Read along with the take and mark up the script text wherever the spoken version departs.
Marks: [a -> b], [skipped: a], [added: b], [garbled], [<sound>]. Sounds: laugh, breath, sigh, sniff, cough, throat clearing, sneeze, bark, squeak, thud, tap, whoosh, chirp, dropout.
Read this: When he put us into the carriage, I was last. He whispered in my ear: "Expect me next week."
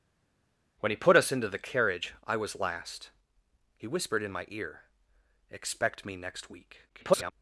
When he put us into the carriage, I was last. He whispered in my ear: "Expect me next week." [garbled]